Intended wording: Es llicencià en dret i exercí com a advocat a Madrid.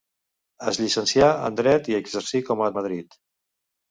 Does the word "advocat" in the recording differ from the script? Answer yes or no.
yes